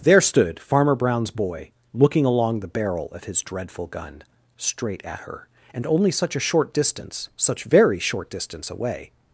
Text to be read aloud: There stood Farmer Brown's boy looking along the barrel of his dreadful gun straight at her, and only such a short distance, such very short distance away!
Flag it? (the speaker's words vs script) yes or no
no